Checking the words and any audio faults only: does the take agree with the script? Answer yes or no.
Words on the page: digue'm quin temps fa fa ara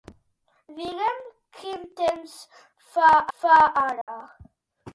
no